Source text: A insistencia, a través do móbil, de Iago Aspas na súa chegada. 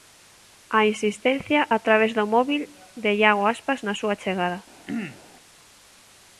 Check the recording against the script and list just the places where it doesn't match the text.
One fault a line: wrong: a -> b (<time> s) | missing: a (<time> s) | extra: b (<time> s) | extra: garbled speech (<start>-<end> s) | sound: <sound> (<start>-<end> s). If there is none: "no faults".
sound: throat clearing (4.9-5.2 s)